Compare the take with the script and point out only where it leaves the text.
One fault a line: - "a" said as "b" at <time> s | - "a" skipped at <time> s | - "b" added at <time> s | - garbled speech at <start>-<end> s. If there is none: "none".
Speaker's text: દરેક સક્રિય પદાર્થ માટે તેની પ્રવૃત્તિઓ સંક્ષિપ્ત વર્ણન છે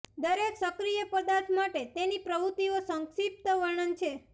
none